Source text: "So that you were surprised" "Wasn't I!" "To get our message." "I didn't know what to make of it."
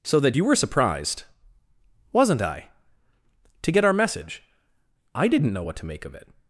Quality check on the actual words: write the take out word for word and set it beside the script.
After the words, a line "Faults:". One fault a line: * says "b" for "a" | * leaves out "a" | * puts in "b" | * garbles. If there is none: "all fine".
"So that you were surprised" "Wasn't I!" "To get our message." "I didn't know what to make of it."
Faults:
all fine